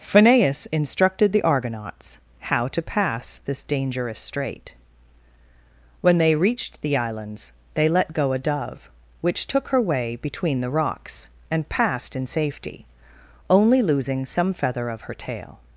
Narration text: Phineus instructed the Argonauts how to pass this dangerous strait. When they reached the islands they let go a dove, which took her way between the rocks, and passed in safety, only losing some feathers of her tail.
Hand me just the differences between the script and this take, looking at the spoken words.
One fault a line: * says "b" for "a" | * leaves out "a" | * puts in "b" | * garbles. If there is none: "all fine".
* says "feather" for "feathers"